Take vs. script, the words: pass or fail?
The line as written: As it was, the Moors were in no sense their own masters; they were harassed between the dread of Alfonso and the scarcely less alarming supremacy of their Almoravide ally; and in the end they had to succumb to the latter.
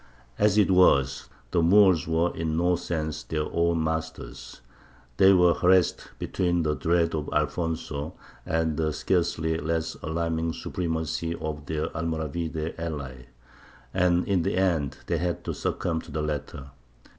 pass